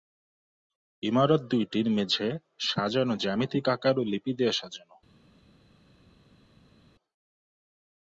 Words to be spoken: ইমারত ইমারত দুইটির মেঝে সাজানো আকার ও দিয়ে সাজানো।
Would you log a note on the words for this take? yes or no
yes